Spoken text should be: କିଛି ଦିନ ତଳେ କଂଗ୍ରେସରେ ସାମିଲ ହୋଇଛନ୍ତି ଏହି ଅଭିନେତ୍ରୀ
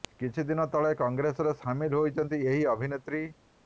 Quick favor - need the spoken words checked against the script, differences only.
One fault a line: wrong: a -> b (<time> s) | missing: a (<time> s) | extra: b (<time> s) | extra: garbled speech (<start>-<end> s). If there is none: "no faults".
no faults